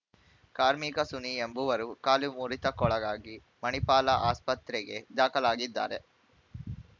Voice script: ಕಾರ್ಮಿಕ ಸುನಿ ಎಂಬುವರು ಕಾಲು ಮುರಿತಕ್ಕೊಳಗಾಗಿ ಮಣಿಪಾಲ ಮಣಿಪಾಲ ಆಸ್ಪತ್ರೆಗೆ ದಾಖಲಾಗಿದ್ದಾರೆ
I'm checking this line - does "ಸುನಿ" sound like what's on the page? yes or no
yes